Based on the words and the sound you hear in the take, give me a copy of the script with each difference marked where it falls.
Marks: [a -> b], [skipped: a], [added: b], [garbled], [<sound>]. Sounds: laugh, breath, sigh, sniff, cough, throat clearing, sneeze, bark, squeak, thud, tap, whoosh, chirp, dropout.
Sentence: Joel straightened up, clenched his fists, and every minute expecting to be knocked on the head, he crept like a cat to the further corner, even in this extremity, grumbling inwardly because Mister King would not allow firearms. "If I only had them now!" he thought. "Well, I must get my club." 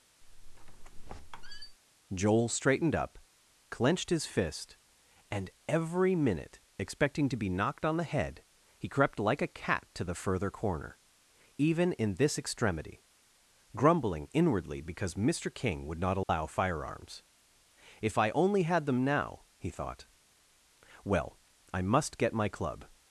[squeak] Joel straightened up, clenched his [fists, -> fist] and every minute expecting to be knocked on the head, he crept like a cat to the further corner, even in this extremity, grumbling inwardly because Mister King would not allow [dropout] firearms. "If I only had them now!" he thought. "Well, I must get my club."